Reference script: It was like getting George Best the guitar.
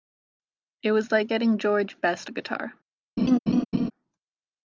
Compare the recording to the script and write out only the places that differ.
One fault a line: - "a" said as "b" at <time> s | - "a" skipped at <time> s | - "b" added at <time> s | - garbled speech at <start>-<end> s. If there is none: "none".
none